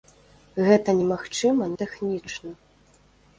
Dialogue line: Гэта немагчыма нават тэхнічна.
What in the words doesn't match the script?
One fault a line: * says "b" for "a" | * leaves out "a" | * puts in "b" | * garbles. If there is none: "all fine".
* leaves out "нават"